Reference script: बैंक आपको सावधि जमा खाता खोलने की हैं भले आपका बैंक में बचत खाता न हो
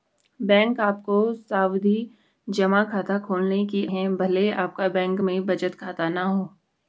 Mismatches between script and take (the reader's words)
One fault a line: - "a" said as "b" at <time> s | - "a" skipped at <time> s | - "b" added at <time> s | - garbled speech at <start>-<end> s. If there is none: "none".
none